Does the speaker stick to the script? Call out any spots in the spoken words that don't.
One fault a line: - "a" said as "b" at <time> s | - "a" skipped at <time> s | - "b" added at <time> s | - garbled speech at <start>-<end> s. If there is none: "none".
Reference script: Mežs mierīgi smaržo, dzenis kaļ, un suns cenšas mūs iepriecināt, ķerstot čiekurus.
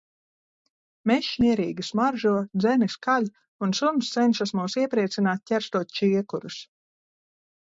none